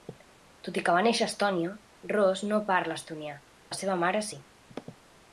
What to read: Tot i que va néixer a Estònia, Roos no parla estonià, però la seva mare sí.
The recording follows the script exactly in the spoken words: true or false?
false